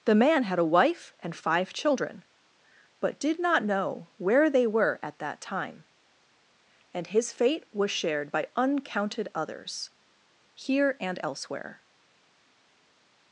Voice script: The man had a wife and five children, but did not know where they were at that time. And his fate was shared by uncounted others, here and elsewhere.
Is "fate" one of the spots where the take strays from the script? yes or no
no